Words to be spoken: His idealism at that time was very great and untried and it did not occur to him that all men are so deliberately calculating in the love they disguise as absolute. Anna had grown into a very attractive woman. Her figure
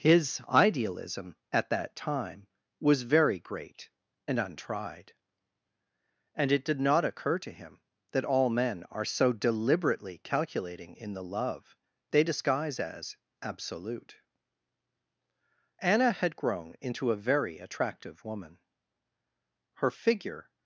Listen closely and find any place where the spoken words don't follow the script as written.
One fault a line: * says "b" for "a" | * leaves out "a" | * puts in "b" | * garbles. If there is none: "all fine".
all fine